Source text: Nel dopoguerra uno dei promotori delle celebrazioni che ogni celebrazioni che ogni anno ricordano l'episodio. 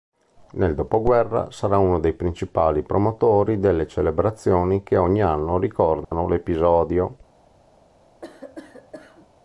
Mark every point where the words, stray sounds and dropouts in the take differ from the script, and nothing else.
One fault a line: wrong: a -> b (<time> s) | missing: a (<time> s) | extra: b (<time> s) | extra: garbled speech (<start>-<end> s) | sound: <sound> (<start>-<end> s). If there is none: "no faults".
extra: sarà (1.5 s)
extra: principali (2.1 s)
missing: celebrazioni che ogni (5.2 s)
sound: dropout (6.0-6.1 s)
sound: cough (8.2-9.3 s)